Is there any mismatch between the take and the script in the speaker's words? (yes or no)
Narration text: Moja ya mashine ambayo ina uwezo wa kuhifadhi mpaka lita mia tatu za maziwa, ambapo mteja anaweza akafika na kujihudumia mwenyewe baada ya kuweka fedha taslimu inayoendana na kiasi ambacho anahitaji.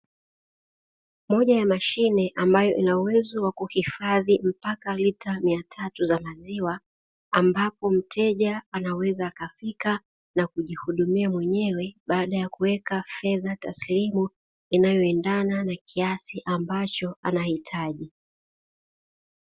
no